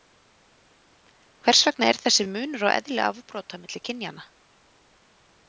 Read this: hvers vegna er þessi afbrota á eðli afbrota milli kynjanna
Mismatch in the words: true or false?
true